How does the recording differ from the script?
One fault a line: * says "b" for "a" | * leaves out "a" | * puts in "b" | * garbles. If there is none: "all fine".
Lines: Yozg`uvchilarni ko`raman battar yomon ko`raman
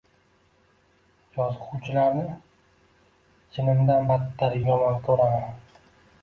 * says "jinimdan" for "ko`raman"